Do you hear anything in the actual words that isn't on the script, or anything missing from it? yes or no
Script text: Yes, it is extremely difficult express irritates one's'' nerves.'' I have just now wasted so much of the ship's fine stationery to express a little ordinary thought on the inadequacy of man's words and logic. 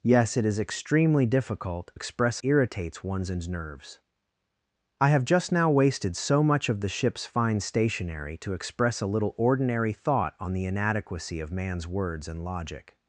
no